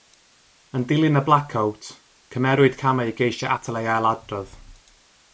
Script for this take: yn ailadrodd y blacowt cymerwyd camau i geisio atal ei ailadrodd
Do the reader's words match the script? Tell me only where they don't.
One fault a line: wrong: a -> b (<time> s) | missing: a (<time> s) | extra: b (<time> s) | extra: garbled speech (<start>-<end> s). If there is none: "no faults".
wrong: ailadrodd -> dilyn (0.9 s)